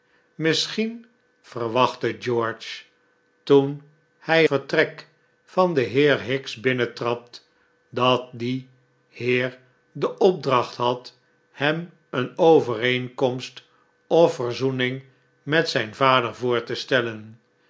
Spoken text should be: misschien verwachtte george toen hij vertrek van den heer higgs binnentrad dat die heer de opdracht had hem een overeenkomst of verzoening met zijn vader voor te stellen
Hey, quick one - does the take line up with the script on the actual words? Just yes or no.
yes